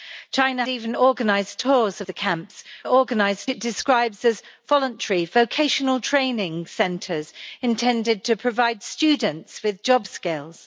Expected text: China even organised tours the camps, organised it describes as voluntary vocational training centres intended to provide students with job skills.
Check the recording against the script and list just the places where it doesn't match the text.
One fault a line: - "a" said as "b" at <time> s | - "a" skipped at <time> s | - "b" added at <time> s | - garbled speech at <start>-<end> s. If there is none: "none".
none